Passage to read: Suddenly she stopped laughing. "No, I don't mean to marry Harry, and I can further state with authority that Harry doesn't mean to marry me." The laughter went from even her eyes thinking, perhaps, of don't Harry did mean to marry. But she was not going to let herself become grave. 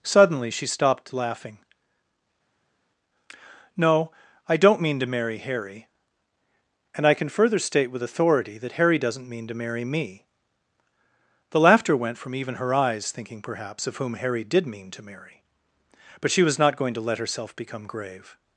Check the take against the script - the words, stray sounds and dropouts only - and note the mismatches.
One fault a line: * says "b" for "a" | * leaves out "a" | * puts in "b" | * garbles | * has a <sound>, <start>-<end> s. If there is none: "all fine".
* says "whom" for "don't"